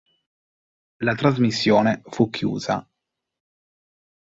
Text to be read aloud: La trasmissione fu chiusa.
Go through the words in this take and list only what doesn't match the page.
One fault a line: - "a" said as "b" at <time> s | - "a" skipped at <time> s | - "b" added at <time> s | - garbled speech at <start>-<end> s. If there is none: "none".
none